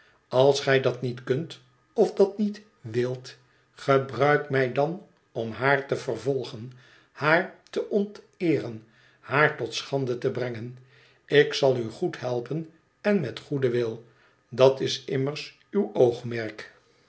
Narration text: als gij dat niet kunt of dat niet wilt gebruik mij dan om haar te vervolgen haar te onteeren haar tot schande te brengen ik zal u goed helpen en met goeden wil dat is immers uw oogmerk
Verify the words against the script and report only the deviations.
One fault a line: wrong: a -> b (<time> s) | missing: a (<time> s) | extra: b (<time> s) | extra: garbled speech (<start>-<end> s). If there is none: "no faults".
no faults